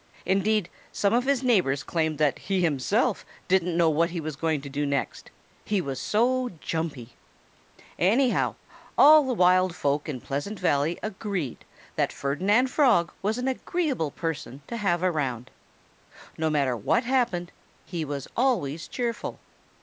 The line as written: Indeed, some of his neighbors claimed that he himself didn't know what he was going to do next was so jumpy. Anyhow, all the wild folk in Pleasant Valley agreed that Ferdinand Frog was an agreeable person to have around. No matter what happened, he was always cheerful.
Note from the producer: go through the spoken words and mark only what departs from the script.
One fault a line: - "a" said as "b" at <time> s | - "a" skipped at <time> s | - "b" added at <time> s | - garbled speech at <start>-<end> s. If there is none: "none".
- "he" added at 5.7 s